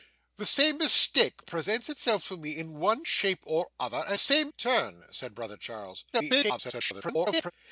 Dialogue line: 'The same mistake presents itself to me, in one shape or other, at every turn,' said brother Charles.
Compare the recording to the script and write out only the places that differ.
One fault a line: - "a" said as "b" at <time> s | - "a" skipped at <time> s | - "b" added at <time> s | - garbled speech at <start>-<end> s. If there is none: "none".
- "every" said as "same" at 4.2 s
- garbled speech at 6.1-7.5 s